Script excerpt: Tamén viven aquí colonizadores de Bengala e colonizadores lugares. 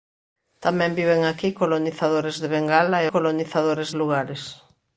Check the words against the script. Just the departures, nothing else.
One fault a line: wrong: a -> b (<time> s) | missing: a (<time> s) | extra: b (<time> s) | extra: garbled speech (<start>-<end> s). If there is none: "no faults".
no faults